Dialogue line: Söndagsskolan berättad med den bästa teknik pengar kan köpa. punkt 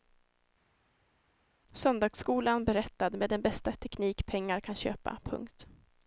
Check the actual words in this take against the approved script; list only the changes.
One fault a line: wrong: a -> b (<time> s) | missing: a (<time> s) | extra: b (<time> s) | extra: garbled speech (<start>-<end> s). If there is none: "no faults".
no faults